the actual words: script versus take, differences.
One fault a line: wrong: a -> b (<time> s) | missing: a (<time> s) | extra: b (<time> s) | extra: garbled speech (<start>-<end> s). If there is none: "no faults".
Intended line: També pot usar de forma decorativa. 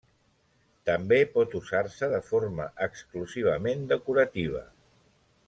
extra: se (2.0 s)
extra: exclusivament (2.9 s)